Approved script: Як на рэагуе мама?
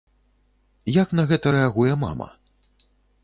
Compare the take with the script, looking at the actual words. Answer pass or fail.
fail